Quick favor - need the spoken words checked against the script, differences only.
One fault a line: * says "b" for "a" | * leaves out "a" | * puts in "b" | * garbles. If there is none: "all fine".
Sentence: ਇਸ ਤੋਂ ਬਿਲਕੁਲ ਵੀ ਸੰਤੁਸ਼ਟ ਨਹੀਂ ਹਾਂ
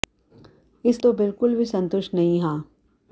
all fine